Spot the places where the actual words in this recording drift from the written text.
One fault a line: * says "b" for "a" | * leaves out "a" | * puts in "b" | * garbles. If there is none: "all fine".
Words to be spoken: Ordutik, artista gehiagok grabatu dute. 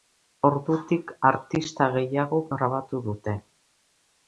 all fine